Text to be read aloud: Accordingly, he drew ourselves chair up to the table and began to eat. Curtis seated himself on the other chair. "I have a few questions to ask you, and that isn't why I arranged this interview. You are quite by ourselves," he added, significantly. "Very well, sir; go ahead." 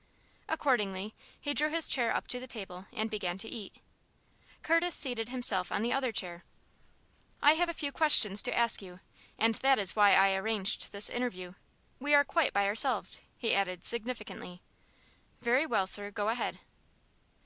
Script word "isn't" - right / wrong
wrong